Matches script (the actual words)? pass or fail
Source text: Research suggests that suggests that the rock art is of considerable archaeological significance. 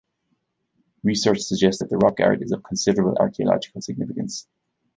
fail